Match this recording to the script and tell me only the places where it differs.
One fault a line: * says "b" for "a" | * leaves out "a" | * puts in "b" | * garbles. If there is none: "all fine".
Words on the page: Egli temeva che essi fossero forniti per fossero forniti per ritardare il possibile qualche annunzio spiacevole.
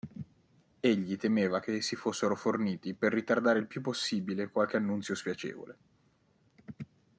* leaves out "fossero forniti per"
* puts in "più"